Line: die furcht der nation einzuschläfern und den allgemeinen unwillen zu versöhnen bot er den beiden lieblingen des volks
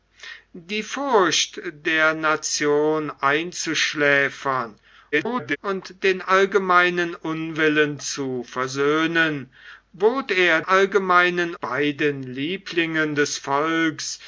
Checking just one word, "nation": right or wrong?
right